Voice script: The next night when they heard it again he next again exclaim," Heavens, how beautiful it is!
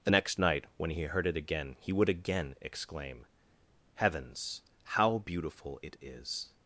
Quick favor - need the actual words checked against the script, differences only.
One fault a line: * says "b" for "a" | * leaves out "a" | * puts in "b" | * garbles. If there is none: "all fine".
* says "he" for "they"
* says "would" for "next"